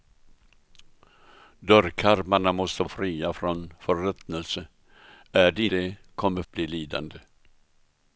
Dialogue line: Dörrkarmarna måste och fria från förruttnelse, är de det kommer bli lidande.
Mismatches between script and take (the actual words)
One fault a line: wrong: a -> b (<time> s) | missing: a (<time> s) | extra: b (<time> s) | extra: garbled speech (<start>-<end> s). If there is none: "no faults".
no faults